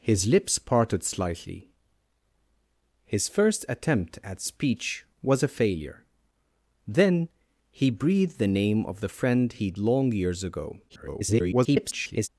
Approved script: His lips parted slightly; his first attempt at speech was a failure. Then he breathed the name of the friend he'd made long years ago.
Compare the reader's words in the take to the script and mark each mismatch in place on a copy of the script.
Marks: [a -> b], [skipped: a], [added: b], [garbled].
His lips parted slightly; his first attempt at speech was a failure. Then he breathed the name of the friend he'd [skipped: made] long years ago. [garbled]